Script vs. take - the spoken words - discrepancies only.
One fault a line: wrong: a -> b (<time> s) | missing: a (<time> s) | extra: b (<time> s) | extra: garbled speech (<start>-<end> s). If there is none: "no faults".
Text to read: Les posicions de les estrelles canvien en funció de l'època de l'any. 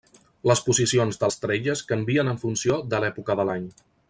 missing: les (1.3 s)